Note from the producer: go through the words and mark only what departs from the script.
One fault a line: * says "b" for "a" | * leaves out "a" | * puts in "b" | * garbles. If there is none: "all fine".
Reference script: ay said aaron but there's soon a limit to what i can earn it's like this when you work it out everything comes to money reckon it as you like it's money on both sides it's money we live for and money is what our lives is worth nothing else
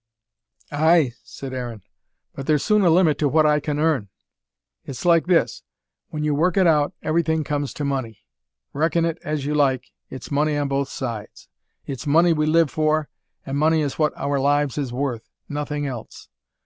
all fine